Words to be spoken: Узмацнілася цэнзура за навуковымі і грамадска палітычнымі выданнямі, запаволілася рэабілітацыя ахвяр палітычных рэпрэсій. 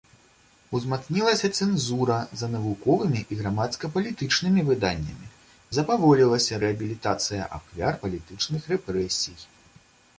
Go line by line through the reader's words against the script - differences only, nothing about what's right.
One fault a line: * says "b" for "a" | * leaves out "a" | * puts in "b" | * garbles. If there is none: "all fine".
all fine